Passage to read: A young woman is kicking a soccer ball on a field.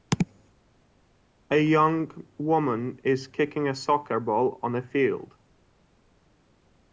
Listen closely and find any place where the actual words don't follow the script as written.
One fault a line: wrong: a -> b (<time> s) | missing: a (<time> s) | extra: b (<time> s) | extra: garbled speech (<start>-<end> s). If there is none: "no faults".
no faults